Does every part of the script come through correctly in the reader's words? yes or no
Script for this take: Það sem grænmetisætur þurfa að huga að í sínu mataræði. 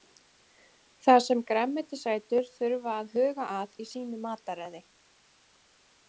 yes